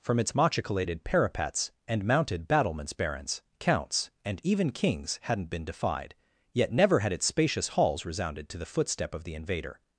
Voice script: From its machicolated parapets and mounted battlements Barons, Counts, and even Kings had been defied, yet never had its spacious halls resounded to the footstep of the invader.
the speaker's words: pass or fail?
fail